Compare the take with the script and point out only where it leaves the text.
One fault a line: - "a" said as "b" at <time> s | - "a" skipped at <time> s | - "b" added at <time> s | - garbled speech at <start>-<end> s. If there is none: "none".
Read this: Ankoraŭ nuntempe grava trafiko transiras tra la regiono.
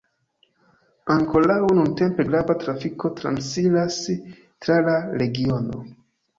none